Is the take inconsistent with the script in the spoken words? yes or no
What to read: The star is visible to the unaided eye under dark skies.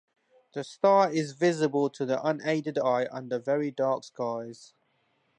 yes